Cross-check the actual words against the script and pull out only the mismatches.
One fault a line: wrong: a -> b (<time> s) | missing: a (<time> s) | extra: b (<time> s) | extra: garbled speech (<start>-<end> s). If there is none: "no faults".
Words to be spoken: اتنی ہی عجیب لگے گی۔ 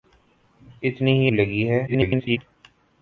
missing: عجیب (1.3 s)
extra: garbled speech (1.9-2.4 s)